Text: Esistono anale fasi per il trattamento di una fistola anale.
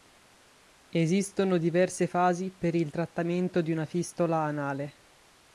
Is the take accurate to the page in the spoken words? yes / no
no